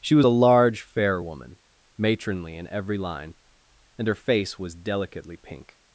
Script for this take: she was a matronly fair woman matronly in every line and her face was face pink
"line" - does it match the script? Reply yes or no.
yes